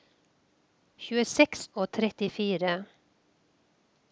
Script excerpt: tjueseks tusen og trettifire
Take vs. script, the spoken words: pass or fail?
fail